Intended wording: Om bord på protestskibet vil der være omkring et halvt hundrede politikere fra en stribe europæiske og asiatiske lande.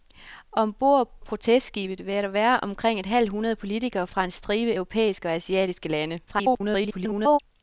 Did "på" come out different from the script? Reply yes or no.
yes